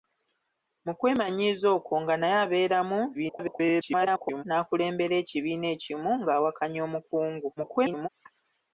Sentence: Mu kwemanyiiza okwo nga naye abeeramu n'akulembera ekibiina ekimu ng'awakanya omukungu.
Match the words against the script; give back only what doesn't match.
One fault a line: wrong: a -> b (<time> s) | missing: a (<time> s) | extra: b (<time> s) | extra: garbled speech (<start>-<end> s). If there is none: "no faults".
extra: garbled speech (3.1-4.4 s)
extra: garbled speech (7.6-8.1 s)